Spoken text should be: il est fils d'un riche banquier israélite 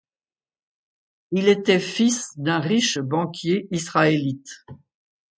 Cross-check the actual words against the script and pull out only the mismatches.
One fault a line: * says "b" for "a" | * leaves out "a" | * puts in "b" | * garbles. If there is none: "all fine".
* says "était" for "est"